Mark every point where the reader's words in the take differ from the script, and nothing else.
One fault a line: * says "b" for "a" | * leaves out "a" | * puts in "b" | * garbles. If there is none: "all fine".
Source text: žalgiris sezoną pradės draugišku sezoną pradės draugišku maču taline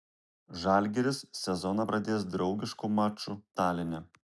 * leaves out "sezoną pradės draugišku"